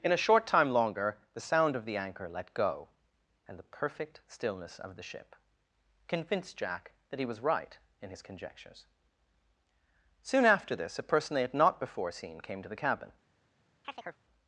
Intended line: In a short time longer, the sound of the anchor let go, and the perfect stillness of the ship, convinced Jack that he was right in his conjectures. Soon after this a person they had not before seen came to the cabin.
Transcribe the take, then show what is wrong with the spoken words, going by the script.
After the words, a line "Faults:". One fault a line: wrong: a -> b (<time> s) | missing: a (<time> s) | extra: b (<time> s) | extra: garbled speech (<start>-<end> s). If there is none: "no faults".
In a short time longer, the sound of the anchor let go, and the perfect stillness of the ship, convinced Jack that he was right in his conjectures. Soon after this a person they had not before seen came to the cabin.
Faults:
no faults